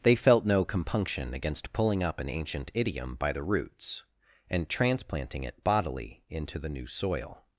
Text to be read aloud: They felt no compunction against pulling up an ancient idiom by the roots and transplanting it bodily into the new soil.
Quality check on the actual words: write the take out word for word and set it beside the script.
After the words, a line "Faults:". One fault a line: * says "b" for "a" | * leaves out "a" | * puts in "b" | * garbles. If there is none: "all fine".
They felt no compunction against pulling up an ancient idiom by the roots and transplanting it bodily into the new soil.
Faults:
all fine